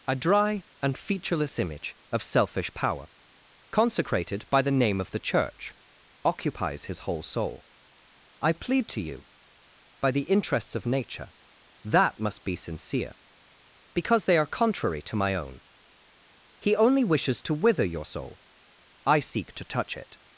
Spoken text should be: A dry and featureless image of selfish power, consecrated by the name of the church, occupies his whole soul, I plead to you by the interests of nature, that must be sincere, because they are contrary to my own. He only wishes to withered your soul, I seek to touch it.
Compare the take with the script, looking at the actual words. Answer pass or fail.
fail